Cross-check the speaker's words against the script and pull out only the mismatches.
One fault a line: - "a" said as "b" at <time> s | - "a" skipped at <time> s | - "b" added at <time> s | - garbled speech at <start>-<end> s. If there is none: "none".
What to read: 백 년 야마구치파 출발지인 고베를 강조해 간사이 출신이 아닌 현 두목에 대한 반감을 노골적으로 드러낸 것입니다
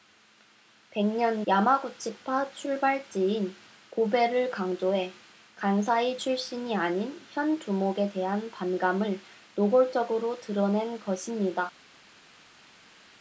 none